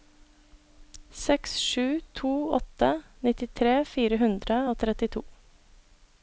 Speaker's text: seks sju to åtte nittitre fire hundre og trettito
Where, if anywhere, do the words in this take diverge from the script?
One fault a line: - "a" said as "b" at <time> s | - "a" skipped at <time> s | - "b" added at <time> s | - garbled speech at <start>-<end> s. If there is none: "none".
none